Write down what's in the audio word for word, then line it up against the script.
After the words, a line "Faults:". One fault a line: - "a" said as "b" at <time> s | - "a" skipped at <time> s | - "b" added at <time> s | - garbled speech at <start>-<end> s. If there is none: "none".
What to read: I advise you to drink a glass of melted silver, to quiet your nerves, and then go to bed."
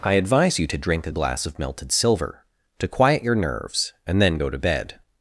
I advise you to drink a glass of melted silver, to quiet your nerves, and then go to bed."
Faults:
none